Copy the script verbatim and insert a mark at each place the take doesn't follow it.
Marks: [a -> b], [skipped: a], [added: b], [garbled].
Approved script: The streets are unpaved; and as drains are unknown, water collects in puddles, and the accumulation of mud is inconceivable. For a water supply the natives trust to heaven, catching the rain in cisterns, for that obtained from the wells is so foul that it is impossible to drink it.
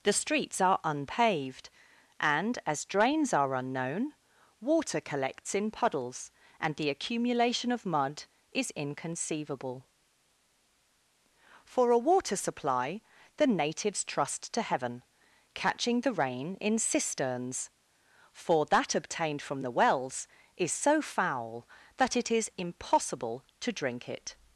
The streets are unpaved; and as drains are unknown, water collects in puddles, and the accumulation of mud is inconceivable. For a water supply the natives trust to heaven, catching the rain in cisterns, for that obtained from the wells is so foul that it is impossible to drink it.